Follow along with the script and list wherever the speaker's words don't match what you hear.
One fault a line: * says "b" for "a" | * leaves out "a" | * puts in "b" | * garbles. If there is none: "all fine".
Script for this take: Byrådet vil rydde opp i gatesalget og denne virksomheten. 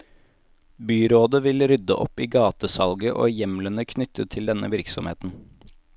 * puts in "hjemlene knyttet til"